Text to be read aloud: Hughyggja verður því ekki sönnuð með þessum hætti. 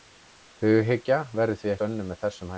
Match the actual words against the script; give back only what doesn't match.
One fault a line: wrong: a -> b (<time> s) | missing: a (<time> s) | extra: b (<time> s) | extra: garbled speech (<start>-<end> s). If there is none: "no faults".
missing: ekki (1.7 s)